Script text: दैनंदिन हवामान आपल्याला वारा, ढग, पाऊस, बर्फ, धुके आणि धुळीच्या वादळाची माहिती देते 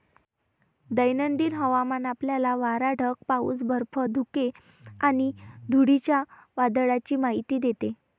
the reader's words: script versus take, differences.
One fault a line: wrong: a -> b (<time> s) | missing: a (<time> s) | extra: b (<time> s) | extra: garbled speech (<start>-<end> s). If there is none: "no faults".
no faults